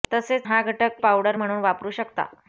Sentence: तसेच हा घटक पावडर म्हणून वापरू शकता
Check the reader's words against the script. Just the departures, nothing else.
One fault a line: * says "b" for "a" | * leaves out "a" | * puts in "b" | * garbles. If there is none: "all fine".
all fine